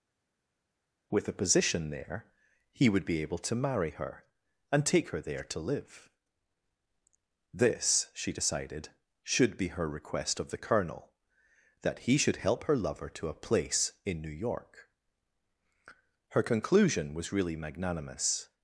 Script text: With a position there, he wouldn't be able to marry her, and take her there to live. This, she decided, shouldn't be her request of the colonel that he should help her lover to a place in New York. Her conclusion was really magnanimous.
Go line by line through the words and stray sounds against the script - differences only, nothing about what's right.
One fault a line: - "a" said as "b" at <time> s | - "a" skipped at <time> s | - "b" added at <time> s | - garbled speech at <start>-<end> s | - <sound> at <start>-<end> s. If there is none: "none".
- "wouldn't" said as "would" at 2.9 s
- "shouldn't" said as "should" at 9.2 s